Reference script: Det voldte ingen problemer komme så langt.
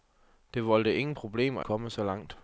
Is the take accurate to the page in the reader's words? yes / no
yes